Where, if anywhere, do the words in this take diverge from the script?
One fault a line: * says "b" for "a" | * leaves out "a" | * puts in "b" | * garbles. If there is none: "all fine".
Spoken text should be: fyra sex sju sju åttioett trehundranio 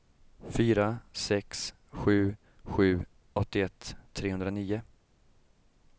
all fine